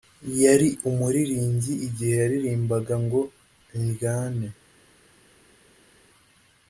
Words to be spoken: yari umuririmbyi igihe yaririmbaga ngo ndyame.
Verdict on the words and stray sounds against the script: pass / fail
pass